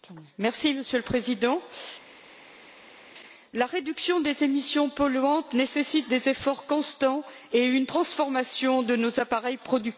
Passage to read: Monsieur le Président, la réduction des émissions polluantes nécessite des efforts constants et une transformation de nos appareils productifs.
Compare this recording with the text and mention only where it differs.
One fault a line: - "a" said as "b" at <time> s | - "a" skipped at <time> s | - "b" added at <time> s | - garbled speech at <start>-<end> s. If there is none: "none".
none